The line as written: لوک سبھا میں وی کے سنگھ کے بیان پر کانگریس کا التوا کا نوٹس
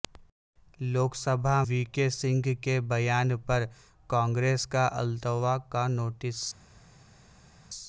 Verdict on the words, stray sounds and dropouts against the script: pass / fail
fail